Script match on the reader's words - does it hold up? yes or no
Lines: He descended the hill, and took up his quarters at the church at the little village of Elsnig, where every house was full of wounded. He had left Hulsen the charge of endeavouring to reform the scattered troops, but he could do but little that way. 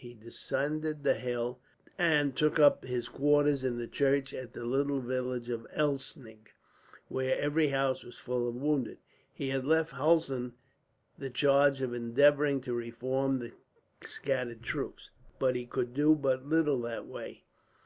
no